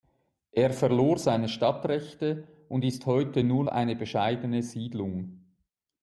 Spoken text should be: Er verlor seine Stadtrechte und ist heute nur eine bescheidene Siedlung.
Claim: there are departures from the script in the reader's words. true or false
false